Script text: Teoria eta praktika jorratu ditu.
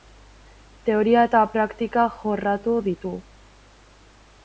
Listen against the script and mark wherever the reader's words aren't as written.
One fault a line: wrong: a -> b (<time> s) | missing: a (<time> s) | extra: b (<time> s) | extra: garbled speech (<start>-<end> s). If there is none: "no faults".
no faults